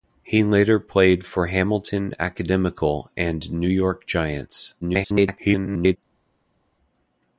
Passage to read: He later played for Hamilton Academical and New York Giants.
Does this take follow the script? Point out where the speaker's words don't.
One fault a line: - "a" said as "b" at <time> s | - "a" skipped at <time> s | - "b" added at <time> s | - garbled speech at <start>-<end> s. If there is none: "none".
- garbled speech at 4.8-6.0 s